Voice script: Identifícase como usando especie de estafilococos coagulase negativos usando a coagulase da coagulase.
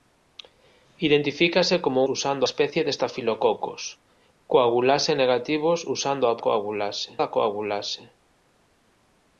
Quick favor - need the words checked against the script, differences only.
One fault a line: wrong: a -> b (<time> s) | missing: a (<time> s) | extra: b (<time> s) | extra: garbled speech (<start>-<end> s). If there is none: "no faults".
no faults